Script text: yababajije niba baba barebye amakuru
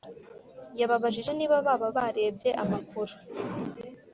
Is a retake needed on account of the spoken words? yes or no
no